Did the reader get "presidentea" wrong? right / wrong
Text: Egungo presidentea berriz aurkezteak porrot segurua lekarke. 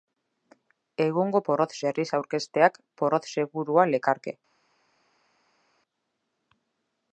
wrong